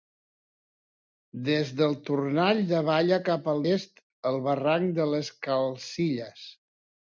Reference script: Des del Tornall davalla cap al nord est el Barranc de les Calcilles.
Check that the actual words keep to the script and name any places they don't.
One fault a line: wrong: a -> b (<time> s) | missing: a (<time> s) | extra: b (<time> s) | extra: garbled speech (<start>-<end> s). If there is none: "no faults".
missing: nord (3.6 s)